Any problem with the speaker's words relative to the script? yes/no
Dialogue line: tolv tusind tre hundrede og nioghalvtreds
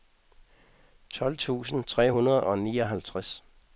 no